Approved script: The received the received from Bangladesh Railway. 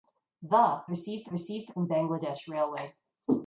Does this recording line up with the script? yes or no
yes